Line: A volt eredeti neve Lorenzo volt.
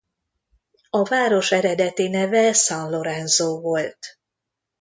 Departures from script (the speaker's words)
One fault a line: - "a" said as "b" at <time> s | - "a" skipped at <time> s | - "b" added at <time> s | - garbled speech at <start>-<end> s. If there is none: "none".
- "volt" said as "város" at 1.0 s
- "San" added at 2.5 s